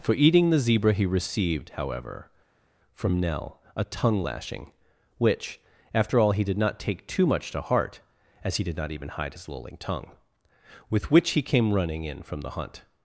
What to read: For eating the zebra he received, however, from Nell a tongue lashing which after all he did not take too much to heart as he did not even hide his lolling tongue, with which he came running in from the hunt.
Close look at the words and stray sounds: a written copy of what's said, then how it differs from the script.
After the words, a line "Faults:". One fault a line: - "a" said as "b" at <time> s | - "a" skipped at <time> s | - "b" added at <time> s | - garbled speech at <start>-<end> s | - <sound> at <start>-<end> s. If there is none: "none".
For eating the zebra he received, however, from Nell a tongue lashing which after all he did not take too much to heart as he did not even hide his lolling tongue, with which he came running in from the hunt.
Faults:
none